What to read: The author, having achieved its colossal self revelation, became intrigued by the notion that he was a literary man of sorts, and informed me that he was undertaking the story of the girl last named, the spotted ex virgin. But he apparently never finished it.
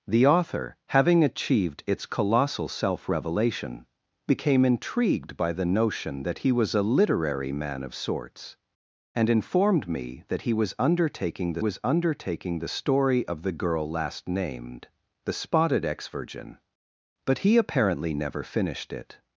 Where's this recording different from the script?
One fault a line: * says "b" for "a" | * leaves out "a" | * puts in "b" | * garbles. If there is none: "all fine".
* puts in "was undertaking the"